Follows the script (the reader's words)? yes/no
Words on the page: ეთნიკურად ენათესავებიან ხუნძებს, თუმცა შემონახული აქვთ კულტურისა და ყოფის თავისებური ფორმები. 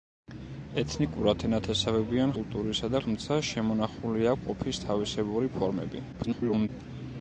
no